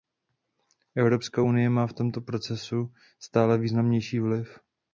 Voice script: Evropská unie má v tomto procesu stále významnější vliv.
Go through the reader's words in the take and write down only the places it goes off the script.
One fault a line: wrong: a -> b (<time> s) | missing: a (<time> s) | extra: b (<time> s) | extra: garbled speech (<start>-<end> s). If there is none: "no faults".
no faults